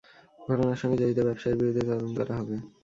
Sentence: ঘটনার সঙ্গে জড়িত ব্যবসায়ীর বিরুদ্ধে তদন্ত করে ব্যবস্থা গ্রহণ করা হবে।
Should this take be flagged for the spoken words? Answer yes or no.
yes